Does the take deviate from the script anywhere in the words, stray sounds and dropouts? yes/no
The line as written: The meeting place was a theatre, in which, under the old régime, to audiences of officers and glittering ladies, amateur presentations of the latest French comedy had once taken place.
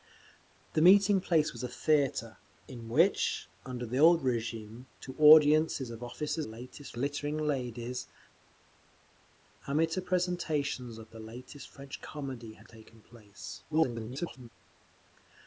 yes